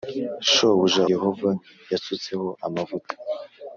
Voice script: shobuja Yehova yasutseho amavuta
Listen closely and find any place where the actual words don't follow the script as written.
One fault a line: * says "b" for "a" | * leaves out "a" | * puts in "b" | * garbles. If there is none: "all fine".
all fine